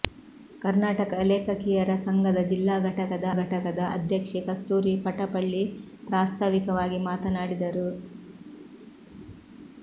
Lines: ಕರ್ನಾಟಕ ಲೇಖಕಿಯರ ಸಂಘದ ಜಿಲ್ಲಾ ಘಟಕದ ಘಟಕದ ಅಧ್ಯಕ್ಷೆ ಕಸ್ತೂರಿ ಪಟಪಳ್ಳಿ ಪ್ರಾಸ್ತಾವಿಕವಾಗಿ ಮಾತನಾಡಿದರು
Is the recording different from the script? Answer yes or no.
no